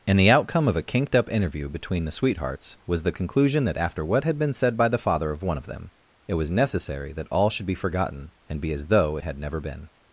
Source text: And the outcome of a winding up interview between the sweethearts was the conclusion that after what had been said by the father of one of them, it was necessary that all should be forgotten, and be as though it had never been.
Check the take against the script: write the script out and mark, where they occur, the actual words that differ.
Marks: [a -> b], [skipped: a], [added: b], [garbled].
And the outcome of a [winding -> kinked] up interview between the sweethearts was the conclusion that after what had been said by the father of one of them, it was necessary that all should be forgotten, and be as though it had never been.